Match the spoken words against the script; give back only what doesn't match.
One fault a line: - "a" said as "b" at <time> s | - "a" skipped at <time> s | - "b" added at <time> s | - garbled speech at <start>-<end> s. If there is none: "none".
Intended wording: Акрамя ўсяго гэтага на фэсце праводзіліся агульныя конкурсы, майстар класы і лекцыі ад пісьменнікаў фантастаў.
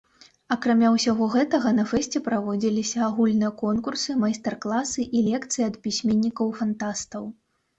none